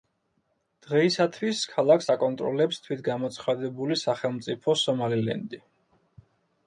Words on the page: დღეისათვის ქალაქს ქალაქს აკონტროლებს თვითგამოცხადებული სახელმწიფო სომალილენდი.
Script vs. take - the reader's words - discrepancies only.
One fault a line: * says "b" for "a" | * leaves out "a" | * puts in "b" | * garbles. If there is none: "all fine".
* leaves out "ქალაქს"